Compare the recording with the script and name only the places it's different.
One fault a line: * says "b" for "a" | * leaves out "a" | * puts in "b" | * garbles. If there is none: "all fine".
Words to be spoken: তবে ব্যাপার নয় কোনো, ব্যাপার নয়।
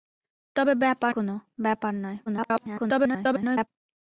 * leaves out "নয়"
* garbles